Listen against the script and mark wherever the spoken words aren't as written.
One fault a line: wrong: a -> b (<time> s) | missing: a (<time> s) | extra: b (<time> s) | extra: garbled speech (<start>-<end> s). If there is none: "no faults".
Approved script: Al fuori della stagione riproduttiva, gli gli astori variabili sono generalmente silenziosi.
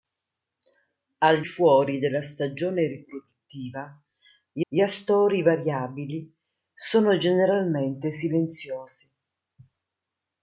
no faults